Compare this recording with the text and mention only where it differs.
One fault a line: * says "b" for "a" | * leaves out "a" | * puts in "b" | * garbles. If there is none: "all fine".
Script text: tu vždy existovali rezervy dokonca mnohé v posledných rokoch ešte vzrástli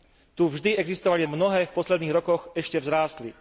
* leaves out "rezervy dokonca"